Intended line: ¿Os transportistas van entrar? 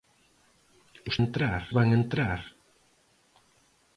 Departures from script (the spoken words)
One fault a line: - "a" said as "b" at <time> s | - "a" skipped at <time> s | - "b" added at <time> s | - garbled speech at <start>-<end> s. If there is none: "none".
- "transportistas" said as "entrar" at 1.2 s